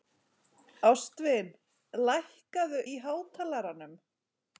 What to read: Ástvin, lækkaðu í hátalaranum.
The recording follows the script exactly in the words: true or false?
true